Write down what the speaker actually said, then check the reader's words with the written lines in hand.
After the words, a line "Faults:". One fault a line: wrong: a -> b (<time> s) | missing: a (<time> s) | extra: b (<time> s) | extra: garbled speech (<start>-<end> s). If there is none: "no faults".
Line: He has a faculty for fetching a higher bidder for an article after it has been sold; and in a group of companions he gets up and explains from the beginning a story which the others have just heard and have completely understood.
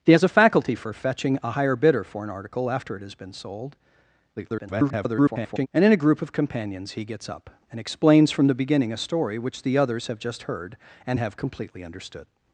He has a faculty for fetching a higher bidder for an article after it has been sold; [garbled] and in a group of companions he gets up and explains from the beginning a story which the others have just heard and have completely understood.
Faults:
extra: garbled speech (4.4-5.7 s)